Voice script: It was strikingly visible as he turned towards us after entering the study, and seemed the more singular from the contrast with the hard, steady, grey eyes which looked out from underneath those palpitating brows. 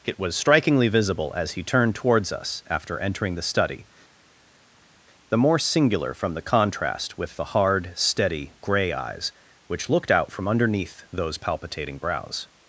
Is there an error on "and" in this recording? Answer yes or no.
yes